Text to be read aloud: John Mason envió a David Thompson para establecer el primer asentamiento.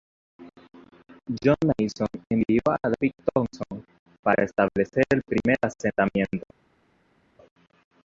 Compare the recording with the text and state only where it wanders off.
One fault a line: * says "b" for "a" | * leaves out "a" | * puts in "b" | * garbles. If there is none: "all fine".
all fine